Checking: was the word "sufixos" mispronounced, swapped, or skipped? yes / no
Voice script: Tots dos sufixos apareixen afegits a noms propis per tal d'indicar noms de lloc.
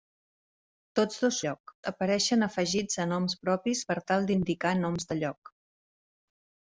yes